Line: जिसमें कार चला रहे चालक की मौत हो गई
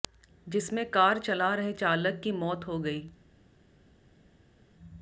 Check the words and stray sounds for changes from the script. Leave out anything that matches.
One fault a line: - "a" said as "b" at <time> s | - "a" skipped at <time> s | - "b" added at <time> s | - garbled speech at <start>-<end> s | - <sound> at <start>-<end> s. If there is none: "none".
none